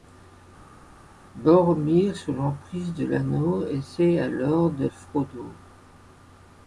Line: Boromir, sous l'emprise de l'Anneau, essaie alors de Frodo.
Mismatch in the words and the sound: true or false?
false